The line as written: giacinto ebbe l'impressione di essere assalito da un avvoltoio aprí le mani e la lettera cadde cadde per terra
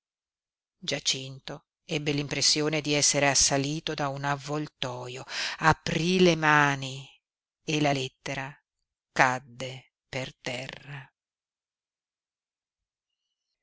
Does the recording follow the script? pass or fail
fail